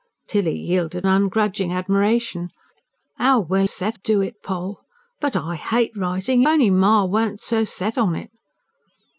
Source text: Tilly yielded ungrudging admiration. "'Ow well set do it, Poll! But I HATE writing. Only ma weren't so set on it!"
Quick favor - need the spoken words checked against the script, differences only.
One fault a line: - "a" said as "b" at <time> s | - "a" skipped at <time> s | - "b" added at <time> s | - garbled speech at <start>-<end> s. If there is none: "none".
none